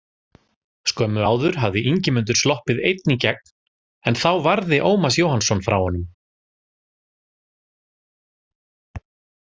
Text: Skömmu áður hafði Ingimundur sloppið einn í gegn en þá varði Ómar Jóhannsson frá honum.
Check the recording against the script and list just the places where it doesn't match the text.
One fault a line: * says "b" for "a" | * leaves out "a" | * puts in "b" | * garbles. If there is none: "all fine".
all fine